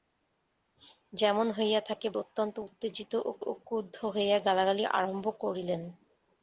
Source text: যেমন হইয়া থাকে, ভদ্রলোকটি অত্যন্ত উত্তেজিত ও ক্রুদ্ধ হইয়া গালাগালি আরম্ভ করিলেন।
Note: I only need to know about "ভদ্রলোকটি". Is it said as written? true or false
false